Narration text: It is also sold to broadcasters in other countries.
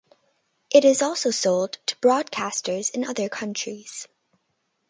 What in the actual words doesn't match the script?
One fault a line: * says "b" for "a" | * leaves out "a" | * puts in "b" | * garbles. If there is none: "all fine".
all fine